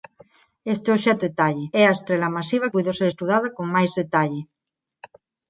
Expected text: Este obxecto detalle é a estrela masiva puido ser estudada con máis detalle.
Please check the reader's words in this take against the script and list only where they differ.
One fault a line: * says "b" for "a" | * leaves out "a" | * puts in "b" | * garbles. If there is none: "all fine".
all fine